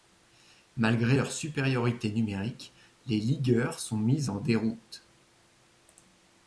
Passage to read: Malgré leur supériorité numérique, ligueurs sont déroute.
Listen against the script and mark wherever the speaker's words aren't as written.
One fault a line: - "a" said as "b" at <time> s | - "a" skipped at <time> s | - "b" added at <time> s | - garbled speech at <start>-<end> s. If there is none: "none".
- "les" added at 3.1 s
- "mis en" added at 4.0 s